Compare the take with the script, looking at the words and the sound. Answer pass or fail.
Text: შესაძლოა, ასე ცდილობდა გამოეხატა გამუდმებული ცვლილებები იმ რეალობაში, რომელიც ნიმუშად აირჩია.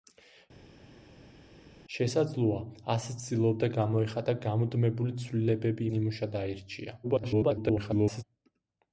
fail